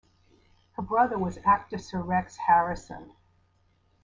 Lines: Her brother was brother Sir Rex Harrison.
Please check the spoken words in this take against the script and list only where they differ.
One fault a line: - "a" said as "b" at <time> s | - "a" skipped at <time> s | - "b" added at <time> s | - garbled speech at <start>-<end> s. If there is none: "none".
- "brother" said as "actor" at 1.4 s